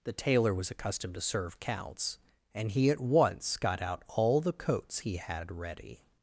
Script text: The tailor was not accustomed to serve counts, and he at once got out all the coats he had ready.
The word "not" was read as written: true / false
false